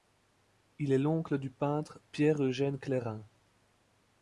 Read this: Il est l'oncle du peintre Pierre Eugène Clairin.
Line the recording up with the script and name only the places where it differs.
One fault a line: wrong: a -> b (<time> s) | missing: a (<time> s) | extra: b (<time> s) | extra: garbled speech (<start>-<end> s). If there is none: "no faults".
no faults